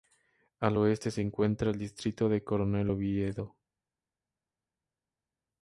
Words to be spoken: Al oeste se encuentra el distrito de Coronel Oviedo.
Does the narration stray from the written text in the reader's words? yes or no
no